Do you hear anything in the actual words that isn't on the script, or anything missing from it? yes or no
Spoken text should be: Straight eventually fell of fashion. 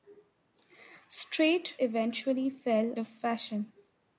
no